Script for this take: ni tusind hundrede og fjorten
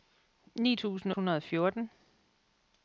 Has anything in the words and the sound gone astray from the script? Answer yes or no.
no